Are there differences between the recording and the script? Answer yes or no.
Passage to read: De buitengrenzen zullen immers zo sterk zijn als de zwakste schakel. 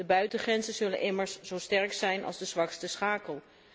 no